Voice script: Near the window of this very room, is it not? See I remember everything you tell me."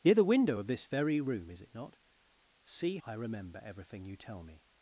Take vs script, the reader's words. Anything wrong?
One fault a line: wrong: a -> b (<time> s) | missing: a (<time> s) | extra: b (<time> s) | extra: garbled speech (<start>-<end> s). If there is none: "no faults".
no faults